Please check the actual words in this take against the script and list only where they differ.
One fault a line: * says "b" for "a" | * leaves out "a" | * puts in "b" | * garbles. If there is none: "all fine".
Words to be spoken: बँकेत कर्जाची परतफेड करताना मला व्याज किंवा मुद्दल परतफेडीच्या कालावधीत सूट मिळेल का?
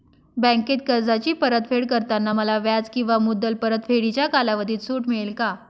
all fine